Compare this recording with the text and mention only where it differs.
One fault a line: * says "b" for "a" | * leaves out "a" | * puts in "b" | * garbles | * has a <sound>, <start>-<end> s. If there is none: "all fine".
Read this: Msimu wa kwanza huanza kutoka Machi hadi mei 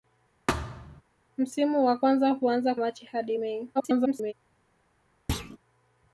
* has a thud, 0.5-1.0 s
* leaves out "kutoka"
* garbles
* has a thud, 5.3-5.6 s